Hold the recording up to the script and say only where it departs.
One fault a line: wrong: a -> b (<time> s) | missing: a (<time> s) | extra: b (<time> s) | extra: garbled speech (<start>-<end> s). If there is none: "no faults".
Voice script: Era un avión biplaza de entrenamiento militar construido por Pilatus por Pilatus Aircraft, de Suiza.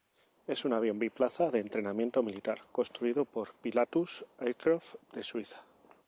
wrong: Era -> Es (0.5 s)
missing: por Pilatus (4.2 s)